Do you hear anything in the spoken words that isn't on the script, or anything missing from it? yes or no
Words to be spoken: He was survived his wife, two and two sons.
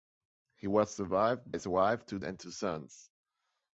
no